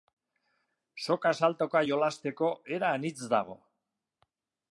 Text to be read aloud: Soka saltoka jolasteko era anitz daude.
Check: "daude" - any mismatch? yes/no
yes